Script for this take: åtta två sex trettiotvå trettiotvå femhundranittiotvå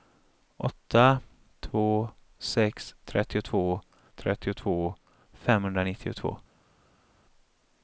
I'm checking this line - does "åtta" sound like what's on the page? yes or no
yes